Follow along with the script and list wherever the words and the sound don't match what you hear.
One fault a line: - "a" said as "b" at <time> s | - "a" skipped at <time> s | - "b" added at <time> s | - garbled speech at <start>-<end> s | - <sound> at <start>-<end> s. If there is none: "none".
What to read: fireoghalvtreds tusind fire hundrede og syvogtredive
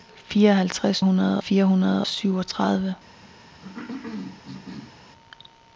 - "tusind" said as "hundrede" at 1.0 s
- "og" skipped at 2.0 s
- cough at 3.6-5.0 s